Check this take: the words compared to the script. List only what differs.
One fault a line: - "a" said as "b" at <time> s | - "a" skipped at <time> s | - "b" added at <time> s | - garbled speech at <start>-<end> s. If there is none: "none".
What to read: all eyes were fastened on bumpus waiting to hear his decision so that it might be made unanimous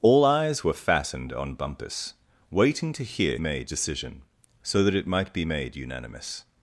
- "his" said as "made" at 3.4 s